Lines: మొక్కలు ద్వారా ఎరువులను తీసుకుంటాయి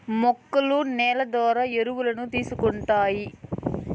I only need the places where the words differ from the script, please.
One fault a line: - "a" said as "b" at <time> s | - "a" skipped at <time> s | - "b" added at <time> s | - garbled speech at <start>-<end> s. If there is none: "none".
- "నేల" added at 0.9 s